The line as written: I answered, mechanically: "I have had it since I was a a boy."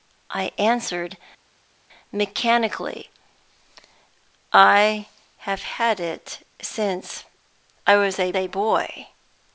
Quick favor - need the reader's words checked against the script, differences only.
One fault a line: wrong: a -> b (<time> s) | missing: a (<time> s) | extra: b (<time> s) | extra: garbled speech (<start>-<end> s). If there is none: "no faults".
no faults